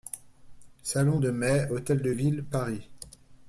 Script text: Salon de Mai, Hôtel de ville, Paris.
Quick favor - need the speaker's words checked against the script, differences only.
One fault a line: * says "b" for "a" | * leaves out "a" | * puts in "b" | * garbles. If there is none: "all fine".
all fine